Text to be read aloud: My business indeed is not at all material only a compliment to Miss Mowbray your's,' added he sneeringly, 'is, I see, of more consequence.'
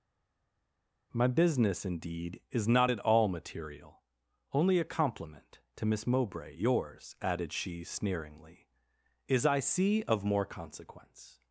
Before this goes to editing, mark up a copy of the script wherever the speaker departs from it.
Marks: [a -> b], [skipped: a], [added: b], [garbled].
My business indeed is not at all material only a compliment to Miss Mowbray your's,' added [he -> she] sneeringly, 'is, I see, of more consequence.'